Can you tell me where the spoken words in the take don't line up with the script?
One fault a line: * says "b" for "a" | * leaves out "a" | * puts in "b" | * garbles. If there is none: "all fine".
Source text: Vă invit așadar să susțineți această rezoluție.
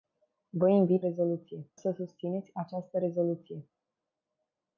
* says "rezoluție" for "așadar"